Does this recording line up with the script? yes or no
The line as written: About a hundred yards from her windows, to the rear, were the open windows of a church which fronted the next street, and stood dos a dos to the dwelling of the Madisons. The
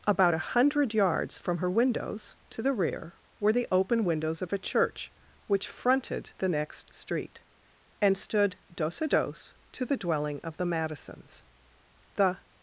yes